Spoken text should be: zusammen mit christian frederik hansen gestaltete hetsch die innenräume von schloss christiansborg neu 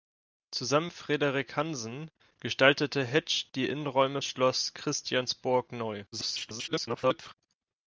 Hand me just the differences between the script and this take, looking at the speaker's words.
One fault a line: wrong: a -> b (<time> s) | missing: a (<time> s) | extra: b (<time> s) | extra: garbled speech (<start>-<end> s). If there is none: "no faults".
missing: mit christian (0.9 s)
missing: von (4.2 s)
extra: garbled speech (6.1-7.3 s)